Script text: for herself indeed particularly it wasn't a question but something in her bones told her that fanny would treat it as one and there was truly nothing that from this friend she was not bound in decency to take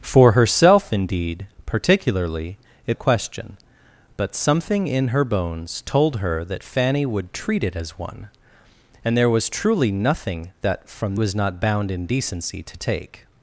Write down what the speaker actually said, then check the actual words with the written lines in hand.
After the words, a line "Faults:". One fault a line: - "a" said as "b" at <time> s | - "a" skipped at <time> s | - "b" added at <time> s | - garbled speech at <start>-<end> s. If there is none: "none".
for herself indeed particularly it a question but something in her bones told her that fanny would treat it as one and there was truly nothing that from was not bound in decency to take
Faults:
- "wasn't" skipped at 3.0 s
- "this friend she" skipped at 11.1 s